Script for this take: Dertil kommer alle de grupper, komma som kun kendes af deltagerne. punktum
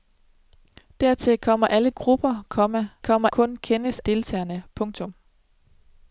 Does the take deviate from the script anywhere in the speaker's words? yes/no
yes